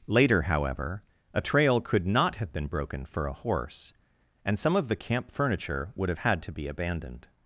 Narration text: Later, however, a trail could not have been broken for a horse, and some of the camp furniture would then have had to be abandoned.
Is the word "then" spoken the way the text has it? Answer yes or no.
no